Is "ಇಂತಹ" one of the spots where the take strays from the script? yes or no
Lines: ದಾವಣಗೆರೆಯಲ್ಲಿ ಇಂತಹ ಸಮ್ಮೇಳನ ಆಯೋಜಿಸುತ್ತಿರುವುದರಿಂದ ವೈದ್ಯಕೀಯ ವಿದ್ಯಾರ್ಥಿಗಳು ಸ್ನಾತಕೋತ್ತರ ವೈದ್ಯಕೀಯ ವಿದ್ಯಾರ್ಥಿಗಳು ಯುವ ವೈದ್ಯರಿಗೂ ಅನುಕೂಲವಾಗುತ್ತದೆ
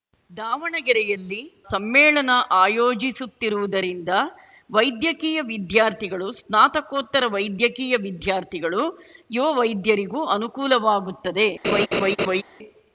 yes